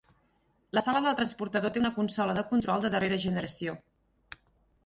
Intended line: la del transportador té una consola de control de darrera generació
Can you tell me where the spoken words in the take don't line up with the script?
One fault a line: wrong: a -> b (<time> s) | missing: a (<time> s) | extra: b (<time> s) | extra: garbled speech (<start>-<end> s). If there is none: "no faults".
extra: sala (0.8 s)